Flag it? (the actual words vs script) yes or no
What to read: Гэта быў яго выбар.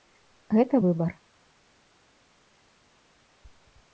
yes